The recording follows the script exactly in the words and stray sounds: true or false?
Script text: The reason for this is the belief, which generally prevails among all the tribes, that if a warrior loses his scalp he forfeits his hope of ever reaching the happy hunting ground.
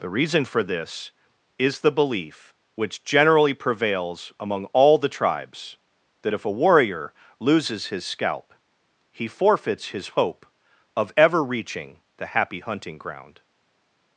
true